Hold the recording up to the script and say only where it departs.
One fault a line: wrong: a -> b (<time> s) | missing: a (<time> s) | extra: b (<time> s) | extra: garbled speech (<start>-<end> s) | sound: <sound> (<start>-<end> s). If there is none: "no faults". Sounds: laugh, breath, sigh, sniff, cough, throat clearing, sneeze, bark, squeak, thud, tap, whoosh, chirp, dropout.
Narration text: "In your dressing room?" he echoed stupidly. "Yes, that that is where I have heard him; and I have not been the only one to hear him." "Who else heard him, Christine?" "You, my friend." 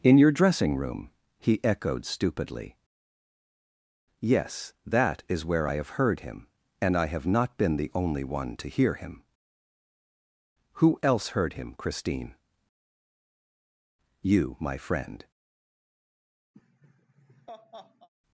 missing: that (5.2 s)
sound: laugh (16.5-18.1 s)